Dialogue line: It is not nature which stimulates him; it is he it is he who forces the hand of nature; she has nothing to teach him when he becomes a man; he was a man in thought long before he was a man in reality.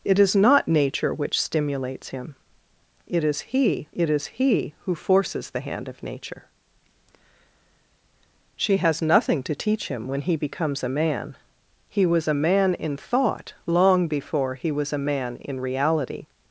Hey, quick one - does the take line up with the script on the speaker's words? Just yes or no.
yes